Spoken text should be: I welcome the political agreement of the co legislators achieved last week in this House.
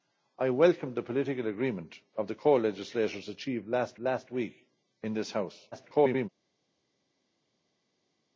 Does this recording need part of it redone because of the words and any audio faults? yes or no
yes